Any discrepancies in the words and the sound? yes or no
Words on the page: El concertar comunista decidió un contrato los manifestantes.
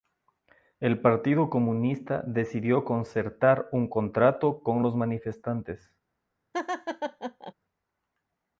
yes